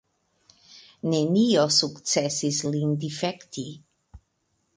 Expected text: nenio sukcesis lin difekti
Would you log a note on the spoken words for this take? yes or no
no